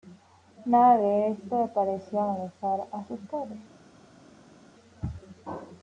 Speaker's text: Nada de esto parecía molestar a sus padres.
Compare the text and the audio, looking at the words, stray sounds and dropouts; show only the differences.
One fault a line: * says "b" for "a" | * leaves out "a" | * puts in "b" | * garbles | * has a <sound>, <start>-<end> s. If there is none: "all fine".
all fine